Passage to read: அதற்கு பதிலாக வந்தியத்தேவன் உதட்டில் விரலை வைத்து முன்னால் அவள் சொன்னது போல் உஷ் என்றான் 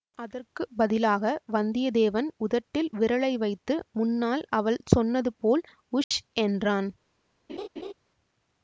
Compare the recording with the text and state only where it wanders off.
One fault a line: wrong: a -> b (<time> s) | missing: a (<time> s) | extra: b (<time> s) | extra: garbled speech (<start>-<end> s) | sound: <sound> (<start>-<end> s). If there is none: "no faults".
sound: dropout (6.0-6.1 s)
sound: laugh (7.5-7.9 s)